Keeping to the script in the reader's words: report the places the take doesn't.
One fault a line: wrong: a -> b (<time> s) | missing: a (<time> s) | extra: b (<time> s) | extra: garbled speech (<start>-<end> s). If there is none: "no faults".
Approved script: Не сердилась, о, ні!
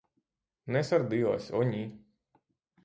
no faults